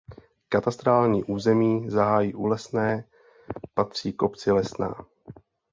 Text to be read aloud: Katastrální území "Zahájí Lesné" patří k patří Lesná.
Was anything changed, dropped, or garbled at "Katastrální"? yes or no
no